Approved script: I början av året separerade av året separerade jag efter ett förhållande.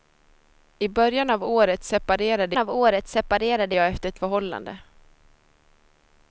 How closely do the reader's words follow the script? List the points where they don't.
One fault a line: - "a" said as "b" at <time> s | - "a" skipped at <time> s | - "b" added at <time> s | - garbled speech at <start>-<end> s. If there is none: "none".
none